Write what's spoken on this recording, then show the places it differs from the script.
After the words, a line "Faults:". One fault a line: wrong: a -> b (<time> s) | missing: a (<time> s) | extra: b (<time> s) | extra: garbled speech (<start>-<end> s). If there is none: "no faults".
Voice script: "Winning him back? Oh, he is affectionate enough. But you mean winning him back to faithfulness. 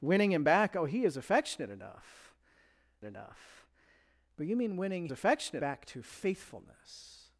"Winning him back? Oh, he is affectionate enough enough. But you mean winning affectionate back to faithfulness.
Faults:
extra: enough (3.0 s)
wrong: him -> affectionate (5.1 s)